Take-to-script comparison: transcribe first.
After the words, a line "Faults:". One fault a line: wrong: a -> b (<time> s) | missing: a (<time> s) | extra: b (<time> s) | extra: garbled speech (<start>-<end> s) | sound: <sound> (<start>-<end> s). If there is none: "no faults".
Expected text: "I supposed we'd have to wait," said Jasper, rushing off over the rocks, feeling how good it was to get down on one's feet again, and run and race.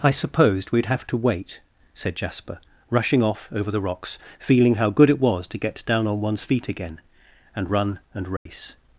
"I supposed we'd have to wait," said Jasper, rushing off over the rocks, feeling how good it was to get down on one's feet again, and run and race.
Faults:
sound: dropout (8.4-8.5 s)